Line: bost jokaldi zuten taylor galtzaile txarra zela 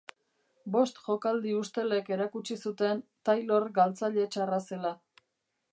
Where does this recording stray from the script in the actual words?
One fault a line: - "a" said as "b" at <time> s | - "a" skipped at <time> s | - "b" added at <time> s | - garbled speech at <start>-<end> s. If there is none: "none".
- "ustelek erakutsi" added at 1.6 s